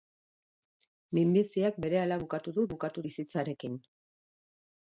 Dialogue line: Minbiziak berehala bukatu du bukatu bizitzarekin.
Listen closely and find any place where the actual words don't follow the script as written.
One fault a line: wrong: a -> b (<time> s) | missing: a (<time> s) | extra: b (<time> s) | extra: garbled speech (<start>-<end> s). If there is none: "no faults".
no faults